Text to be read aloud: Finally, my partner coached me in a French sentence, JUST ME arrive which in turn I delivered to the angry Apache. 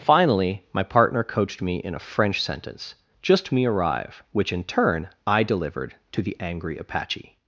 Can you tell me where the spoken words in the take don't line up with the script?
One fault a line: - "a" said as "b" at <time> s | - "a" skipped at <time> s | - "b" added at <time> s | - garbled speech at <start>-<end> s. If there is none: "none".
none